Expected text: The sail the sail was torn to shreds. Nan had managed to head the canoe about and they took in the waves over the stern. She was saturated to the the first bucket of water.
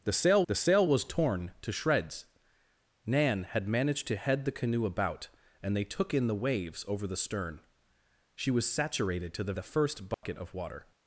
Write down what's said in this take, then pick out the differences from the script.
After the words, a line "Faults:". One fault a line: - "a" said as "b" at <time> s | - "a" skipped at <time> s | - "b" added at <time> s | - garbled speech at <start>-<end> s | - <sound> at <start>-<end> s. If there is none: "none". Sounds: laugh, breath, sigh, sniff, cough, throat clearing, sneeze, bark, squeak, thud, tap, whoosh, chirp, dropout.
The sail the sail was torn to shreds. Nan had managed to head the canoe about and they took in the waves over the stern. She was saturated to the the first bucket of water.
Faults:
- dropout at 10.1-10.2 s